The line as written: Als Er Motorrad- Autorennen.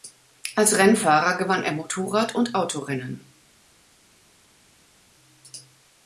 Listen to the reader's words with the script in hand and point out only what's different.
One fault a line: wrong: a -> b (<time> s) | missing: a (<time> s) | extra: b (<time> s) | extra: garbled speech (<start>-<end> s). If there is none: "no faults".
extra: Rennfahrer gewann (0.8 s)
extra: und (2.3 s)